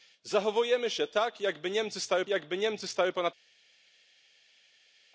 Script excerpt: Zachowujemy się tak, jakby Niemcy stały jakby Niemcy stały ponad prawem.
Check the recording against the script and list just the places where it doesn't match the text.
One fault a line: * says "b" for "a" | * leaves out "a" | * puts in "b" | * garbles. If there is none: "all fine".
all fine